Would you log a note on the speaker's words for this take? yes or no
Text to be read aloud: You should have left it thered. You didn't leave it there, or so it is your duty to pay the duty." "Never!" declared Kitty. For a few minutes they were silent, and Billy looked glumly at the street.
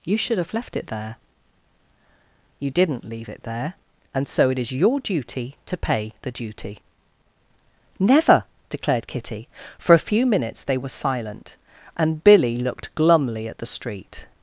yes